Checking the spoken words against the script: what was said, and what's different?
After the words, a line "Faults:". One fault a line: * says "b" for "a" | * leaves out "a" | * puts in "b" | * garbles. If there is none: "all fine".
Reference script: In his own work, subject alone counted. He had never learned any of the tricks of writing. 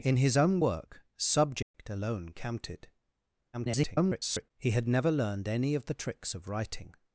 In his own work, subject alone counted. [garbled] He had never learned any of the tricks of writing.
Faults:
* garbles